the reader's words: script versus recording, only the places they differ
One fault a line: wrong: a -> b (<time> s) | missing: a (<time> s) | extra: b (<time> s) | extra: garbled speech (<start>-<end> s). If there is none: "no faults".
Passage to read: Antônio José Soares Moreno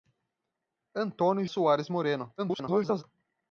missing: José (1.4 s)
extra: garbled speech (2.4-3.0 s)